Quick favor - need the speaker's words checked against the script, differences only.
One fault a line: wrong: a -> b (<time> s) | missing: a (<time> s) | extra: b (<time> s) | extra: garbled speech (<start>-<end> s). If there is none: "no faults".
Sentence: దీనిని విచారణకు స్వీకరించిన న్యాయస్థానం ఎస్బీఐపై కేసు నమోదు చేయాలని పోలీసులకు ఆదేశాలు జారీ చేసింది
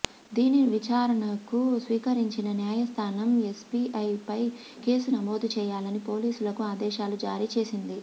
no faults